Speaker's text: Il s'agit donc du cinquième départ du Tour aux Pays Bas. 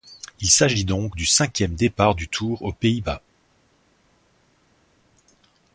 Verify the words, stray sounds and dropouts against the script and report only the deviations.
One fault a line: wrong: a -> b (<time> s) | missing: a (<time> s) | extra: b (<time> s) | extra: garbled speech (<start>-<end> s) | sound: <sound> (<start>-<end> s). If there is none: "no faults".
no faults